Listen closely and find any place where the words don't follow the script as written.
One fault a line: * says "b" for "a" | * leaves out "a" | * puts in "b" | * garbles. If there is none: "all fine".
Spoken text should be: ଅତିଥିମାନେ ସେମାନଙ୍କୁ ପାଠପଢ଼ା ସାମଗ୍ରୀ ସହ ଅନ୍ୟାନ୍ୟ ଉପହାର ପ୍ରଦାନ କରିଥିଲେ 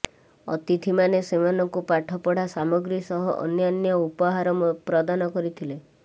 all fine